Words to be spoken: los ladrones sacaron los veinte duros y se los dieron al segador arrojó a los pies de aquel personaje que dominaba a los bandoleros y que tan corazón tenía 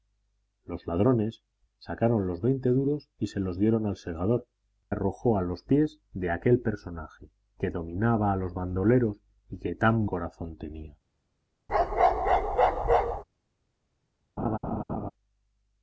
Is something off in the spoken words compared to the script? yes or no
no